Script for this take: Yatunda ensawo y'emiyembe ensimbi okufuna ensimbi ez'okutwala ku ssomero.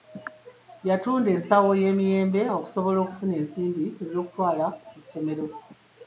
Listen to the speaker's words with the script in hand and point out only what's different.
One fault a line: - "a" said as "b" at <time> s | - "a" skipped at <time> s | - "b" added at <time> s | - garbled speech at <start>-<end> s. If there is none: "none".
- "ensimbi" said as "okusobola" at 2.6 s